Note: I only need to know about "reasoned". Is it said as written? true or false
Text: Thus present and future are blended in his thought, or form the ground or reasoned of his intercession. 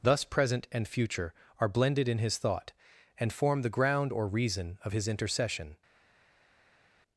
false